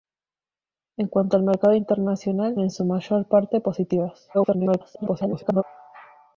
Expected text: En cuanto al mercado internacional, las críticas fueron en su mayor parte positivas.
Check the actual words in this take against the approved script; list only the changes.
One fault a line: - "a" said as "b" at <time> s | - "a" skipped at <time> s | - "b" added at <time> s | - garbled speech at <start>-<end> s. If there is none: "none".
- "las críticas fueron" skipped at 2.6 s
- garbled speech at 4.3-5.6 s